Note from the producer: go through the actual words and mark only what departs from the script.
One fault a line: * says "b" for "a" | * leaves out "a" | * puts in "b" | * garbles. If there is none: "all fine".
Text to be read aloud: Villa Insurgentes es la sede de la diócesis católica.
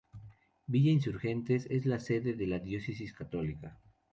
all fine